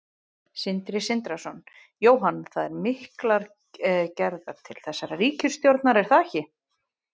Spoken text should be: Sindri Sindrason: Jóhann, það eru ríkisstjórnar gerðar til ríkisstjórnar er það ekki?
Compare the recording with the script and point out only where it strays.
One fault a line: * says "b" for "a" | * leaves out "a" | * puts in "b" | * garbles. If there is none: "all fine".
* says "miklar" for "ríkisstjórnar"
* puts in "þessarar"